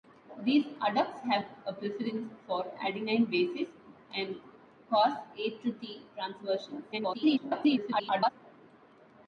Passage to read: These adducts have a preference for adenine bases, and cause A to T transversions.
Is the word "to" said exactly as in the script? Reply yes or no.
yes